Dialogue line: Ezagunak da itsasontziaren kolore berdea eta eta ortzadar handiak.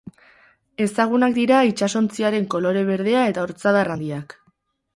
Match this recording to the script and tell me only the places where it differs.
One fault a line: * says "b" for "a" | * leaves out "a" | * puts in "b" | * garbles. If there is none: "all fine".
* says "dira" for "da"
* leaves out "eta"